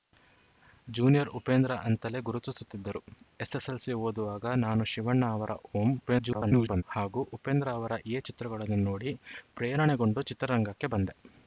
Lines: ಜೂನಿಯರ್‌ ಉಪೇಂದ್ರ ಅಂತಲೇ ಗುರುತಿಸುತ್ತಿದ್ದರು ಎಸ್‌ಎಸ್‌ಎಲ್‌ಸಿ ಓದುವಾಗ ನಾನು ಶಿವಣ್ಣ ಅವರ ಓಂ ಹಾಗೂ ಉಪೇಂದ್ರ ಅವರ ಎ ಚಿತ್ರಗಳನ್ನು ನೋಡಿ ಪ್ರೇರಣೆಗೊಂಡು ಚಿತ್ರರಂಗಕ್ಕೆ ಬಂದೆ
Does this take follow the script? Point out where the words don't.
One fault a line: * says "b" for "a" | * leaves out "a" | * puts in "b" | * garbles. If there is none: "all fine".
* garbles